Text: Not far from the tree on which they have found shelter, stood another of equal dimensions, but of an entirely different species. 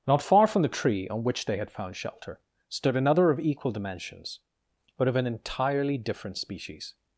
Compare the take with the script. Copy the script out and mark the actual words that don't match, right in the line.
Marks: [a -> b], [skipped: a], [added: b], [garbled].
Not far from the tree on which they [have -> had] found shelter, stood another of equal dimensions, but of an entirely different species.